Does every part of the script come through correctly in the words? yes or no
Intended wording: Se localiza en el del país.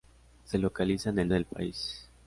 yes